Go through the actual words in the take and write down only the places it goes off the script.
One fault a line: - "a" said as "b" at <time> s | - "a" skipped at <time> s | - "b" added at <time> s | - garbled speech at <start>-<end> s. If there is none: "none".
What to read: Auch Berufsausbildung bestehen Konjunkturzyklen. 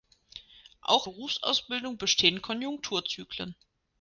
none